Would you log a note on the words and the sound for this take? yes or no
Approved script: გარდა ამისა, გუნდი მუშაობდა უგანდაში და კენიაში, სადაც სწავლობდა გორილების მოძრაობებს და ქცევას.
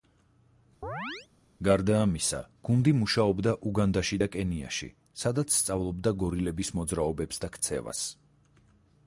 yes